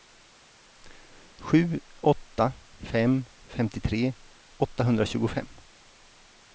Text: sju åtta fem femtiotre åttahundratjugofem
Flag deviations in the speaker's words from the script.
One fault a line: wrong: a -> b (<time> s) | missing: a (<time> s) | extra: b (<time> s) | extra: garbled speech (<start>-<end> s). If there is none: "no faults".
no faults